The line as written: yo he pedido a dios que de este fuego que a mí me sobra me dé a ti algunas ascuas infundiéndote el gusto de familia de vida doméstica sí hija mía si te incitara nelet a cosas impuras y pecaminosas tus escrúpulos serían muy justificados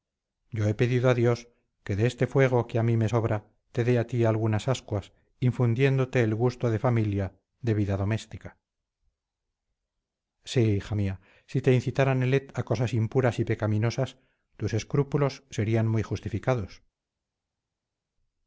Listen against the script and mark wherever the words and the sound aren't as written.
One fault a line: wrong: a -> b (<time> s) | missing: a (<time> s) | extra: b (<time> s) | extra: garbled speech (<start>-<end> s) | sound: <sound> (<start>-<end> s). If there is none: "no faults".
wrong: me -> te (3.7 s)